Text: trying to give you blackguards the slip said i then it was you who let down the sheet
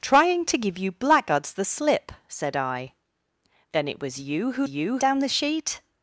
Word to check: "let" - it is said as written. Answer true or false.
false